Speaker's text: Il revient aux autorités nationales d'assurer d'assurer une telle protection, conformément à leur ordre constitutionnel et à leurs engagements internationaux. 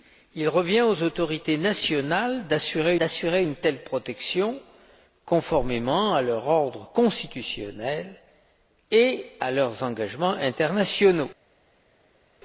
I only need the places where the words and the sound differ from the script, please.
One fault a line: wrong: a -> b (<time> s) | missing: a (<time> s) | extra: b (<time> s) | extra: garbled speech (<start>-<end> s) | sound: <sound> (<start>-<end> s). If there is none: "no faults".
no faults